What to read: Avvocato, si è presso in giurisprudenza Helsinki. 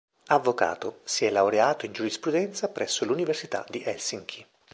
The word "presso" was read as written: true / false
false